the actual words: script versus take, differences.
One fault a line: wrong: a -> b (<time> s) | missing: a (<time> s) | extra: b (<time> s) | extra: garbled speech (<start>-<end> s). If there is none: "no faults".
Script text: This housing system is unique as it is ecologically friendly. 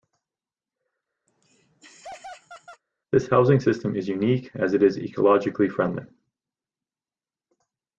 no faults